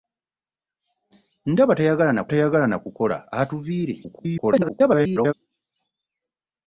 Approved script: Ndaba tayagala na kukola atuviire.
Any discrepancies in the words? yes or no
yes